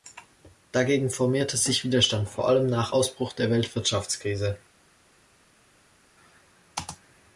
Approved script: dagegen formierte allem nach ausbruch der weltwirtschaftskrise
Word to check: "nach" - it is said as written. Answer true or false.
true